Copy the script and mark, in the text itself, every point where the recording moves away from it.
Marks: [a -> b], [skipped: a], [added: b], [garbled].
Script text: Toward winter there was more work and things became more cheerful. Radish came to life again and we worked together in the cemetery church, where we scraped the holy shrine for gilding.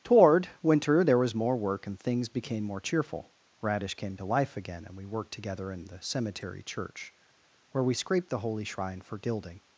Toward winter there was more work and things became more cheerful. Radish came to life again and we worked together in the cemetery church, where we scraped the holy shrine for gilding.